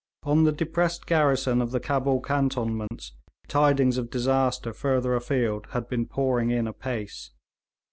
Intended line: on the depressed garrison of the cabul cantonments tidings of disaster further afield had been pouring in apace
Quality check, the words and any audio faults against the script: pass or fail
fail